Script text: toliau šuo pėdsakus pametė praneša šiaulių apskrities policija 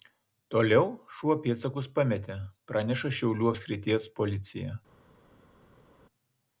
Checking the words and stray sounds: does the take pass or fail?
pass